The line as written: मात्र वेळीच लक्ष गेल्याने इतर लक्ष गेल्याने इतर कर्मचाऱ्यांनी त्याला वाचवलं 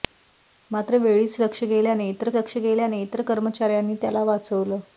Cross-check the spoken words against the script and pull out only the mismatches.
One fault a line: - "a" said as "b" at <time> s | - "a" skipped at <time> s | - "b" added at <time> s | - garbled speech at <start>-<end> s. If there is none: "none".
none